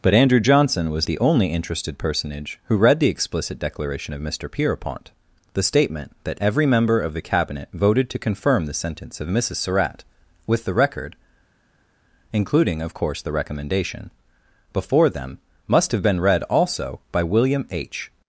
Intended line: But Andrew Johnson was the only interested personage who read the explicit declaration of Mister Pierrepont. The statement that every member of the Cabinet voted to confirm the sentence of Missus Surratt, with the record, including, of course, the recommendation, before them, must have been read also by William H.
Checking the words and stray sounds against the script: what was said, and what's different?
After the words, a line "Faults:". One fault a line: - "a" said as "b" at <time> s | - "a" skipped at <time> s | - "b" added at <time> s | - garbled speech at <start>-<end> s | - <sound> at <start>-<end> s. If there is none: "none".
But Andrew Johnson was the only interested personage who read the explicit declaration of Mister Pierrepont. The statement that every member of the Cabinet voted to confirm the sentence of Missus Surratt, with the record, including, of course, the recommendation, before them, must have been read also by William H.
Faults:
none